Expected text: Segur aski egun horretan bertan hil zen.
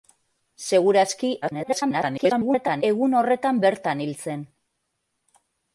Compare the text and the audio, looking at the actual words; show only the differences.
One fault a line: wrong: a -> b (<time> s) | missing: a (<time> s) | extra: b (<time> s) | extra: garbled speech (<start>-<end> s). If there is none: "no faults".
extra: garbled speech (1.4-2.8 s)